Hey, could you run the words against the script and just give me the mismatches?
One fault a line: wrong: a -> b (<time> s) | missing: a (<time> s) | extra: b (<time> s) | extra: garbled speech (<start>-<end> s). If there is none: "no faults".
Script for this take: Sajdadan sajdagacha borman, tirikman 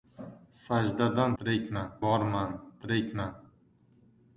wrong: sajdagacha -> tirikman (1.4 s)